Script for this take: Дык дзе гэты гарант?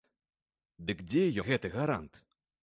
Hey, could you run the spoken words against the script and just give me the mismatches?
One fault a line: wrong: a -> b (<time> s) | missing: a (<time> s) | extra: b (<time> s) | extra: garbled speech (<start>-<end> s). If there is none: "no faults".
no faults